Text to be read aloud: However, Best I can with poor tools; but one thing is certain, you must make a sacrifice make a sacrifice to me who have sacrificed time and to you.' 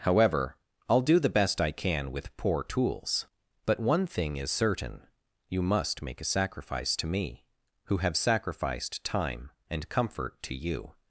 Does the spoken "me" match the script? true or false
true